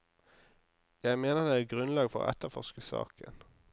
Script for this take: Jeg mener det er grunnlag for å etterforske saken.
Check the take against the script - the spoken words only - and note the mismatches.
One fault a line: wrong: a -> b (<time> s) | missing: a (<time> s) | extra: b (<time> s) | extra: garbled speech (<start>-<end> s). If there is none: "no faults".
no faults